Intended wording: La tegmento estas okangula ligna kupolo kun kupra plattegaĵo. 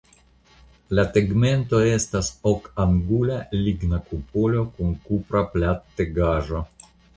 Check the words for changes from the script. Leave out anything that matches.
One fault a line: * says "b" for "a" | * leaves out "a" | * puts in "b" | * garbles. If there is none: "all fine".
all fine